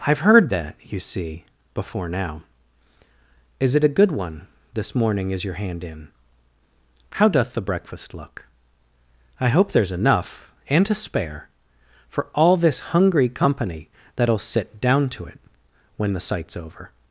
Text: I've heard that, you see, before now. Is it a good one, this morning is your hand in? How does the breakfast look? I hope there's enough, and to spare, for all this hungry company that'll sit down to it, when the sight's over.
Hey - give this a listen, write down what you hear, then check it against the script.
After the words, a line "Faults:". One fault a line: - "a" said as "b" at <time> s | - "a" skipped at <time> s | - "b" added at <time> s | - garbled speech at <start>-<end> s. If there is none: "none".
I've heard that, you see, before now. Is it a good one, this morning is your hand in? How doth the breakfast look? I hope there's enough, and to spare, for all this hungry company that'll sit down to it, when the sight's over.
Faults:
- "does" said as "doth" at 7.3 s